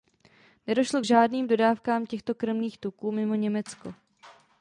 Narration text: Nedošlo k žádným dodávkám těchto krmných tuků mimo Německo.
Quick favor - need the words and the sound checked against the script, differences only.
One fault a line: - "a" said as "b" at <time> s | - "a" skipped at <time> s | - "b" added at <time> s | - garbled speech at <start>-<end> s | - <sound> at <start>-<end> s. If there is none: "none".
none